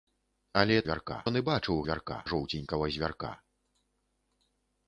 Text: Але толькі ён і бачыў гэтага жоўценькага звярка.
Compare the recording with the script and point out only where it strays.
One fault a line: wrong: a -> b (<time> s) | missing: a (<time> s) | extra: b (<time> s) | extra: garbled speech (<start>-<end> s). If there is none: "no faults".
wrong: толькі -> звярка (0.9 s)
wrong: гэтага -> звярка (1.9 s)